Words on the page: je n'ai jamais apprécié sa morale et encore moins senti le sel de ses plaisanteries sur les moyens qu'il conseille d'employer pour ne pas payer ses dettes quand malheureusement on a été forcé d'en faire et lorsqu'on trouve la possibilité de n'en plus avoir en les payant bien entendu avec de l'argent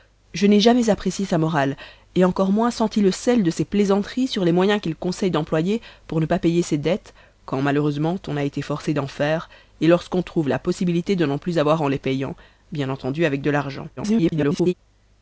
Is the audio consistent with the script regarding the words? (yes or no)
no